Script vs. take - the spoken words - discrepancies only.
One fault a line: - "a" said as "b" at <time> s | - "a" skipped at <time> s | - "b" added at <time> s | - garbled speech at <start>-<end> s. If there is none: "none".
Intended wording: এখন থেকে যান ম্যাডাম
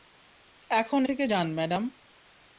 none